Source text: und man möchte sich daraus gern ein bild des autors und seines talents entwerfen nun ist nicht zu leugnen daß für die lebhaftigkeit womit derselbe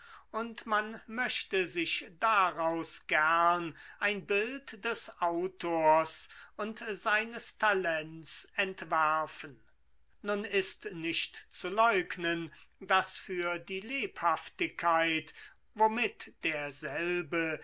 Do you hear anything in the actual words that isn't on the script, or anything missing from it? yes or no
no